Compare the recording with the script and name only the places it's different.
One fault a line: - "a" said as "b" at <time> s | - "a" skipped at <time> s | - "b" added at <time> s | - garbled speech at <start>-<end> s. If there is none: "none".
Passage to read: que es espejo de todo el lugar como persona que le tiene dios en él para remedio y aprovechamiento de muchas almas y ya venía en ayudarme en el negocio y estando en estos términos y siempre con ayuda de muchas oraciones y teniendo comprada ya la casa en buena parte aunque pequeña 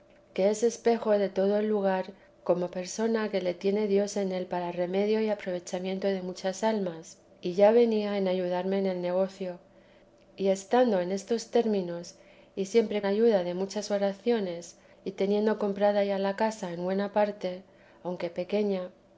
- "con" skipped at 13.0 s